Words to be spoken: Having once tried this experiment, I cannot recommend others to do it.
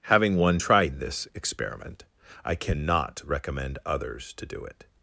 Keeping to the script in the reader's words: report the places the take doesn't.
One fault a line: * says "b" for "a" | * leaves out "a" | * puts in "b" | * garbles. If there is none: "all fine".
* says "one" for "once"